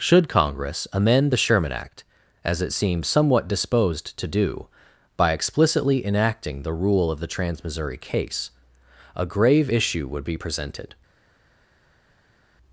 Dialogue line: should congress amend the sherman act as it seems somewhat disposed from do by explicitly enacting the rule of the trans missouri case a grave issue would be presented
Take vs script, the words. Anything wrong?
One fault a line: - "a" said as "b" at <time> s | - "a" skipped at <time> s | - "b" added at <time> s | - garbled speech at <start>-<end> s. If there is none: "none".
- "from" said as "to" at 4.2 s